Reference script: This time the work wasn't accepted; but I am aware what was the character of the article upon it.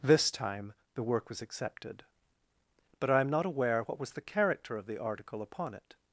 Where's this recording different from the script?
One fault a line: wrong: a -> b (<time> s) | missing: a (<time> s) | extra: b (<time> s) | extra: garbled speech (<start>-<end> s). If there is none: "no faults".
wrong: wasn't -> was (1.3 s)
extra: not (3.3 s)